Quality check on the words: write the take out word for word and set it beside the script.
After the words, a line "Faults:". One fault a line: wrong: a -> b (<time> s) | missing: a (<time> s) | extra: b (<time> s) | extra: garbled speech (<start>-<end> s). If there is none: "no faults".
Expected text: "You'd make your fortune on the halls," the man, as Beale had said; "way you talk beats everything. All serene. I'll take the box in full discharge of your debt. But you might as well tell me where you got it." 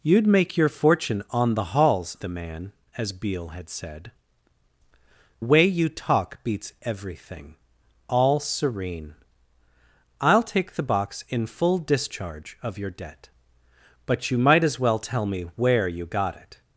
"You'd make your fortune on the halls," the man, as Beale had said; "way you talk beats everything. All serene. I'll take the box in full discharge of your debt. But you might as well tell me where you got it."
Faults:
no faults